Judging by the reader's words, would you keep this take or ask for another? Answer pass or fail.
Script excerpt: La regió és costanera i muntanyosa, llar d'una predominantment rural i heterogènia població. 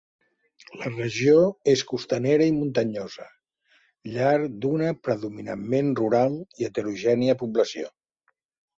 pass